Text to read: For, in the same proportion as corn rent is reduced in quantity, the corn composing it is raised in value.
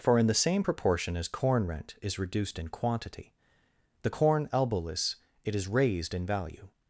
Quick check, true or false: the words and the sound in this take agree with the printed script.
false